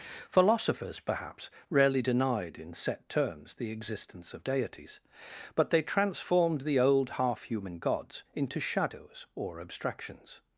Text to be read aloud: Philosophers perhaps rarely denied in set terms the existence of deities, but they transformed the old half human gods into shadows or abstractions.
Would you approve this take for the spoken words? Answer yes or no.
yes